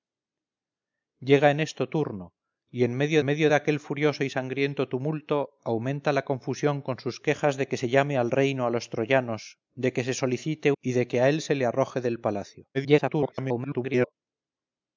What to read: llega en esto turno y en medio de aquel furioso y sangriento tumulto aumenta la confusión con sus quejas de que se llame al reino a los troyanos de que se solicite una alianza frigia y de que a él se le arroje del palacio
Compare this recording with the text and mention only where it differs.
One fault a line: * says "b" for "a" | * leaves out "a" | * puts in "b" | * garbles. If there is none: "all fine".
* puts in "medio"
* leaves out "una alianza frigia"
* garbles